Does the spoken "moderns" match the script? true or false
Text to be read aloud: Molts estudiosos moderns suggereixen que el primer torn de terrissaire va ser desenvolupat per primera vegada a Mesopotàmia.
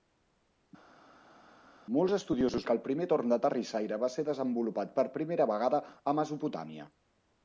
false